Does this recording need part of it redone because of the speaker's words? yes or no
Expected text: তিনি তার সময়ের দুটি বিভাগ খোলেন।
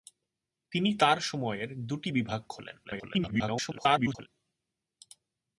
yes